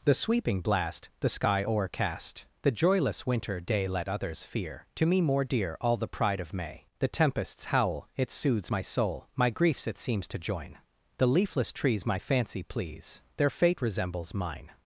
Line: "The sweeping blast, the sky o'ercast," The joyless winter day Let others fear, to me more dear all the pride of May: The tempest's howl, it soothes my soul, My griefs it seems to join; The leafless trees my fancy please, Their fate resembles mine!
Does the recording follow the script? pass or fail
pass